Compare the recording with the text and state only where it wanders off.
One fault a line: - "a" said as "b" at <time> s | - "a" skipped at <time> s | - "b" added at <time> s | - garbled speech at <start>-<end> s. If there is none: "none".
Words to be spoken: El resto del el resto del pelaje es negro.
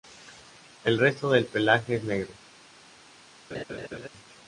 - "el resto del" skipped at 1.4 s